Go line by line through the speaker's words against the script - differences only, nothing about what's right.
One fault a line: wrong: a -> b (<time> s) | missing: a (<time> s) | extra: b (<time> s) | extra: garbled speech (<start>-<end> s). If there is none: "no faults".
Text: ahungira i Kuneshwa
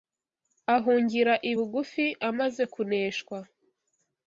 extra: Bugufi amaze (1.5 s)